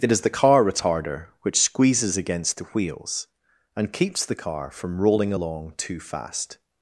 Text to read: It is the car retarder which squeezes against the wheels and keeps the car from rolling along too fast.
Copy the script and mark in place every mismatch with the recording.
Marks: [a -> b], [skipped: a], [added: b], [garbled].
It is the car retarder which squeezes against the wheels and keeps the car from rolling along too fast.